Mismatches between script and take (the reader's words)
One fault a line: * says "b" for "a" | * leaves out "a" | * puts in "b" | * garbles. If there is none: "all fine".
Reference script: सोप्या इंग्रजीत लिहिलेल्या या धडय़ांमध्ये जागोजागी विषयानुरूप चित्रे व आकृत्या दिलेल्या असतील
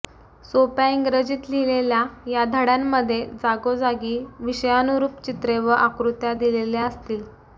all fine